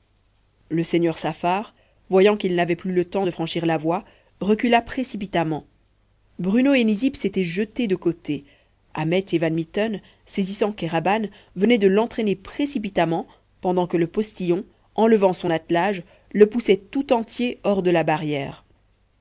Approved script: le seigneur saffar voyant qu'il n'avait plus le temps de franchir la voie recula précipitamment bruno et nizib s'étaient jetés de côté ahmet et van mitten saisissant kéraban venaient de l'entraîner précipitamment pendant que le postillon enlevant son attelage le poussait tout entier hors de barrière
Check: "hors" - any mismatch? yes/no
no